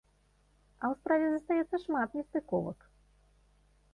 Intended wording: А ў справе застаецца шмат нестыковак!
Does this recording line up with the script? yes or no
yes